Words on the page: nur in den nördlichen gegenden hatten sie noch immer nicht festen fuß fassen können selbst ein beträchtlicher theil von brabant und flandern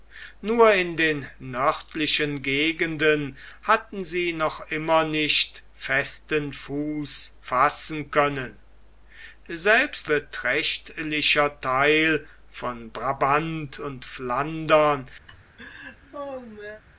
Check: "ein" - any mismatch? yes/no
yes